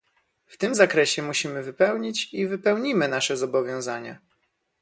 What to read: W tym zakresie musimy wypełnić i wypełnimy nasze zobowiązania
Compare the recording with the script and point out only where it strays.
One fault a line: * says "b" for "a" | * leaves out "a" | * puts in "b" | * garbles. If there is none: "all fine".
all fine